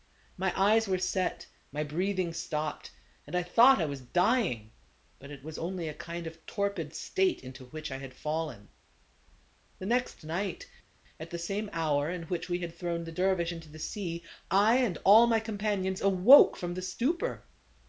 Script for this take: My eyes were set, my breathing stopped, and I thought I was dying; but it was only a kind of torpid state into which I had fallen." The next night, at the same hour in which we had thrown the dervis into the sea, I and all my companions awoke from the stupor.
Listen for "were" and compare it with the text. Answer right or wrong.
right